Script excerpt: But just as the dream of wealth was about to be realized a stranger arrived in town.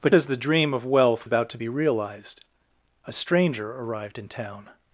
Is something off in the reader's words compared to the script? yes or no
yes